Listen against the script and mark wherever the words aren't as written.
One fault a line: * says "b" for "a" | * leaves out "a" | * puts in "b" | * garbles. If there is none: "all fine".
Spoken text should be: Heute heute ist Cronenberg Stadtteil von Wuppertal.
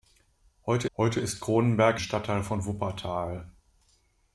all fine